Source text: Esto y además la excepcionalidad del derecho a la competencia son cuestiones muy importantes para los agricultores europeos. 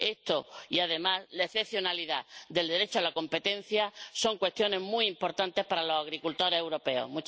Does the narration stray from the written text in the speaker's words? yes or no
no